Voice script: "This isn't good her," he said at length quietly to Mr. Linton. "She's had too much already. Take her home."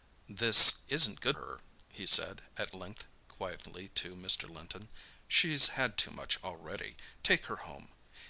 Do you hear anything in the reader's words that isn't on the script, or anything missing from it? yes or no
no